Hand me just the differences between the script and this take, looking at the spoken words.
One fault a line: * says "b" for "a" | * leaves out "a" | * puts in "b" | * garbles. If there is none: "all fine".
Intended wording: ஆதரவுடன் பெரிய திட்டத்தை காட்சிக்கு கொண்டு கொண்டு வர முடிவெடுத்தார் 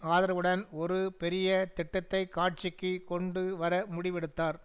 * puts in "ஒரு"
* leaves out "கொண்டு"